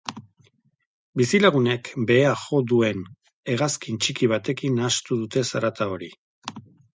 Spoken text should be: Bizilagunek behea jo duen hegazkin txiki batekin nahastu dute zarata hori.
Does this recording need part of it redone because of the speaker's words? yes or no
no